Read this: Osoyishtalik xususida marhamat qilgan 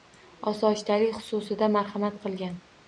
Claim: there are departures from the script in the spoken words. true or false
false